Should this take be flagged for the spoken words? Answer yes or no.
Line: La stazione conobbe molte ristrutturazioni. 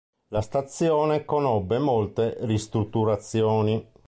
no